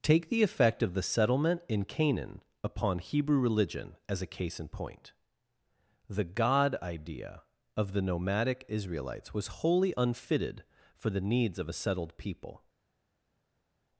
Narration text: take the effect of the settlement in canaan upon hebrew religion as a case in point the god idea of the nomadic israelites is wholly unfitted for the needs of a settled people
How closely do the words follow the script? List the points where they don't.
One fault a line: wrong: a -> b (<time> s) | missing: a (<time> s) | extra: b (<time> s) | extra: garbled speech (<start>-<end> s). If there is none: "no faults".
wrong: is -> was (9.3 s)